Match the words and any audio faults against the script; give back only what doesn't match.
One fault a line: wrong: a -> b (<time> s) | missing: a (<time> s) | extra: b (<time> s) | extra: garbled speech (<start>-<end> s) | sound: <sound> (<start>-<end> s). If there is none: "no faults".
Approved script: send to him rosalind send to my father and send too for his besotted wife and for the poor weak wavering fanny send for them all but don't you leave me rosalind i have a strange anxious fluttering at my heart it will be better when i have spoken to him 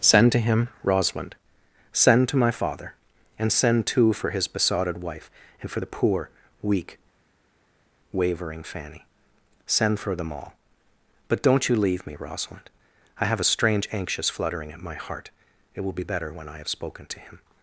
no faults